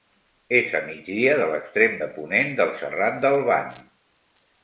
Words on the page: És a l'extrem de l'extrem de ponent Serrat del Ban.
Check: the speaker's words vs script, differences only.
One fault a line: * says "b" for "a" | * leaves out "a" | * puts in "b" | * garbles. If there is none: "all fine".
* says "migdia" for "l'extrem"
* puts in "del"